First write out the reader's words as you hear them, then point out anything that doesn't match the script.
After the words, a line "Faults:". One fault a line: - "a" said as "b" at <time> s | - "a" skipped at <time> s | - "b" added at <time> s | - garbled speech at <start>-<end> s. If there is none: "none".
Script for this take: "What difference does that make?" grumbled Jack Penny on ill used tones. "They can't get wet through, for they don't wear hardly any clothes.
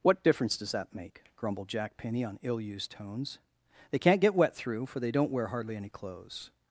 "What difference does that make?" grumbled Jack Penny on ill used tones. "They can't get wet through, for they don't wear hardly any clothes.
Faults:
none